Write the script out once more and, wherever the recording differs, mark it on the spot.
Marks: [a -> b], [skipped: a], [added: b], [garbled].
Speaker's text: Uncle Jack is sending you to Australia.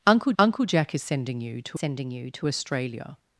Uncle [added: uncle] Jack is sending you to [added: sending you to] Australia.